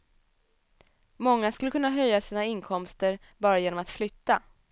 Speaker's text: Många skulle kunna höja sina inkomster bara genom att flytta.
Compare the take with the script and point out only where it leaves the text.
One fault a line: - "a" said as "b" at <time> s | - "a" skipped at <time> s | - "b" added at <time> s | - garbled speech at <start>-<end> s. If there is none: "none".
none